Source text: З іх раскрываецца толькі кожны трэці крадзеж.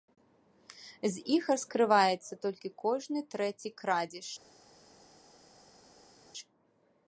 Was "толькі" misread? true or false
false